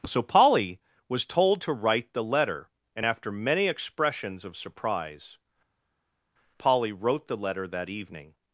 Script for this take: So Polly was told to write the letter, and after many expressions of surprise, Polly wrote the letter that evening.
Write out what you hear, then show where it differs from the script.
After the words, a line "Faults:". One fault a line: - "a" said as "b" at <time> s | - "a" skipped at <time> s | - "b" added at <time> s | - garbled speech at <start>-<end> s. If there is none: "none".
So Polly was told to write the letter, and after many expressions of surprise, Polly wrote the letter that evening.
Faults:
none